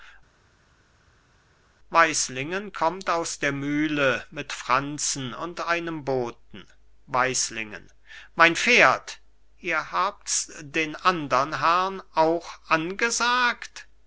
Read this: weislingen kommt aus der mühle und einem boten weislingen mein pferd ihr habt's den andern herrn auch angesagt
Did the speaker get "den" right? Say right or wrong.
right